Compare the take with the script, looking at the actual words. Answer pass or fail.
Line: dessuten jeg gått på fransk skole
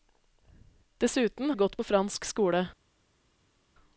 pass